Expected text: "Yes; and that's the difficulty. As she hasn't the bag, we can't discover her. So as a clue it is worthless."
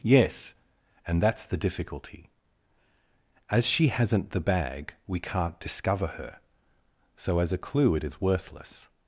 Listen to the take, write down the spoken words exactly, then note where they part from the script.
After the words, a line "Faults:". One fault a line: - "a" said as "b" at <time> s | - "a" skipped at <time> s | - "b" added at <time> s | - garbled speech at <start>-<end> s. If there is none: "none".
"Yes; and that's the difficulty. As she hasn't the bag, we can't discover her. So as a clue it is worthless."
Faults:
none